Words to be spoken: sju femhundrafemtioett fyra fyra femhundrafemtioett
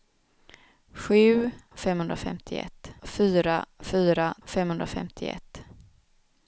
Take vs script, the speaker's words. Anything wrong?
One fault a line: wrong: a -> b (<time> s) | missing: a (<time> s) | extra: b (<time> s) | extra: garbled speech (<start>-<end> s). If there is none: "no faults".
no faults